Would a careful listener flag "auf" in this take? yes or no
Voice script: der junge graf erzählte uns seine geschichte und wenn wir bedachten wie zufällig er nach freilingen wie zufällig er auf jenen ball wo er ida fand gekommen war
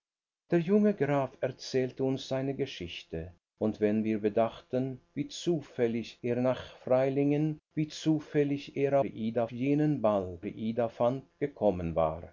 yes